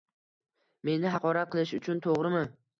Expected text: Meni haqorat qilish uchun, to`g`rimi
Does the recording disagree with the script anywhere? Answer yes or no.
no